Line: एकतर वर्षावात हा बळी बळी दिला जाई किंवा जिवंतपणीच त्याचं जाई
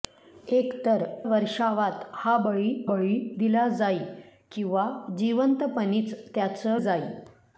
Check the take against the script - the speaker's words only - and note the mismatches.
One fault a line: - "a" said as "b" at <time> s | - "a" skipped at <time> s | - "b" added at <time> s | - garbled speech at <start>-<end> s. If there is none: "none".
none